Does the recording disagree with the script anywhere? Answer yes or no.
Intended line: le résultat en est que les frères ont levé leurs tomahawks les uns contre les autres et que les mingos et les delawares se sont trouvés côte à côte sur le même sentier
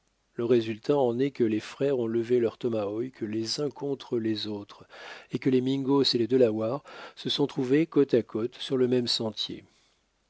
no